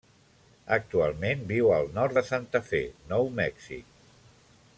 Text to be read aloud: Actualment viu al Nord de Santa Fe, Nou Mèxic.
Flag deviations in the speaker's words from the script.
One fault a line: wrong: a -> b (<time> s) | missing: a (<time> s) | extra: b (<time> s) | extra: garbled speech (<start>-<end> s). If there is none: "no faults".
no faults